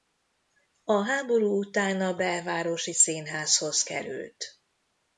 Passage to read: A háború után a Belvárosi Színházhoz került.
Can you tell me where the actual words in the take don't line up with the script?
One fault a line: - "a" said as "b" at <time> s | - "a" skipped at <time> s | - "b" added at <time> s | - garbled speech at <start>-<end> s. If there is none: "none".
none